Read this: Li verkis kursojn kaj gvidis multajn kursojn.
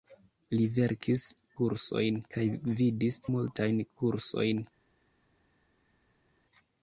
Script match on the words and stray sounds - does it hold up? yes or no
yes